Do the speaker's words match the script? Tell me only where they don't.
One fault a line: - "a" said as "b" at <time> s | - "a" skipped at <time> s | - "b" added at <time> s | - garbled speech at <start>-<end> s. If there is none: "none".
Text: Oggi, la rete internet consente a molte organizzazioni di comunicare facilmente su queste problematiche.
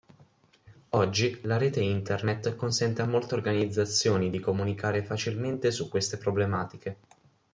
none